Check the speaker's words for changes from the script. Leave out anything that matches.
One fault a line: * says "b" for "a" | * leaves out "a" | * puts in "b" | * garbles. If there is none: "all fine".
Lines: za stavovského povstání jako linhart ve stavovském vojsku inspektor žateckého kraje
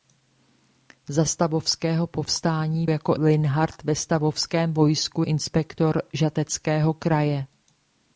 all fine